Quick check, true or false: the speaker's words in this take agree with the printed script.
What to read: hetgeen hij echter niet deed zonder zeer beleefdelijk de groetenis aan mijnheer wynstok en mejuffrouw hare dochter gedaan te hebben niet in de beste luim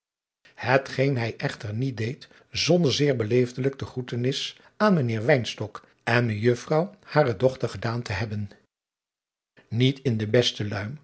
true